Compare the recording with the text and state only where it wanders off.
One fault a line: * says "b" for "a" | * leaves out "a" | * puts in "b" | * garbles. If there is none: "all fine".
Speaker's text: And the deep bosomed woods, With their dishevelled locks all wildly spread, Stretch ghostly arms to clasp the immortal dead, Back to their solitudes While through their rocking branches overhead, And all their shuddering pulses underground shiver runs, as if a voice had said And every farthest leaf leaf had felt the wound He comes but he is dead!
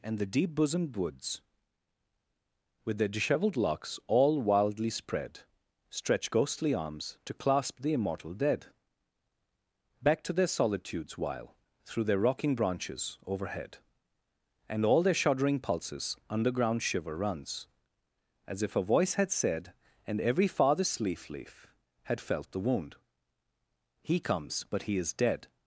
all fine